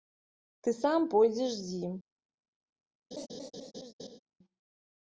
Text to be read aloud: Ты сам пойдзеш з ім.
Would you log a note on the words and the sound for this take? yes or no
yes